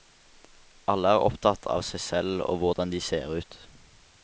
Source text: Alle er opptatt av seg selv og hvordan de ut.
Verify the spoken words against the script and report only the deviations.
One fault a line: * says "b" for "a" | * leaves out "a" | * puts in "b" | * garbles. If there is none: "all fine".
* puts in "ser"